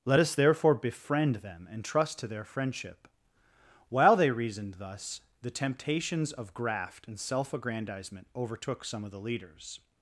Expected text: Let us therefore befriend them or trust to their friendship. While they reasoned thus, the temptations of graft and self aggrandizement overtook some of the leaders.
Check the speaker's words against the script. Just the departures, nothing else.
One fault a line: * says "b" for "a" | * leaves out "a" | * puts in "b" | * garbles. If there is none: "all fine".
* says "and" for "or"